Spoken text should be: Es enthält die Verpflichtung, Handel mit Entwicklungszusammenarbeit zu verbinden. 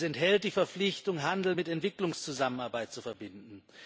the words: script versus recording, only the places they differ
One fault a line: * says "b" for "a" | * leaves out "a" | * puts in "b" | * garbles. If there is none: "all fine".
all fine